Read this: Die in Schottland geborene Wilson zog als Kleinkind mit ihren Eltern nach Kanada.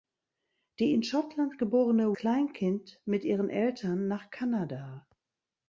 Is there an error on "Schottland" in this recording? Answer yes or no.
no